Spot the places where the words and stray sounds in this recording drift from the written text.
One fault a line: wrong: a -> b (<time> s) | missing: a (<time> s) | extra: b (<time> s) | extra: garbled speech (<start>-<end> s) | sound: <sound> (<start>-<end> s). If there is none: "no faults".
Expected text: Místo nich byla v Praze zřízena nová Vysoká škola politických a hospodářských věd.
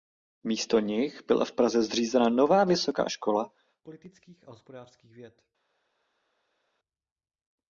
no faults